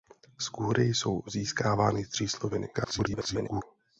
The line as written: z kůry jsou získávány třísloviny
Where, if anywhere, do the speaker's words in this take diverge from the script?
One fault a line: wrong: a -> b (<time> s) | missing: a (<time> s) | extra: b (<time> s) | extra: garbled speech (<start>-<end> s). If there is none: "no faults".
extra: garbled speech (2.7-3.6 s)